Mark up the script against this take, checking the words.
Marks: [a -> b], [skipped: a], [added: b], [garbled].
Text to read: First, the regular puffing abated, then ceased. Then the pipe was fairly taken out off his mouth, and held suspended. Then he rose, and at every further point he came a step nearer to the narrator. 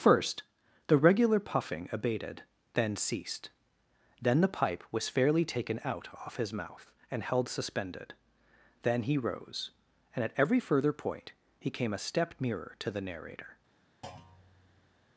First, the regular puffing abated, then ceased. Then the pipe was fairly taken out off his mouth, and held suspended. Then he rose, and at every further point he came a step nearer to the narrator.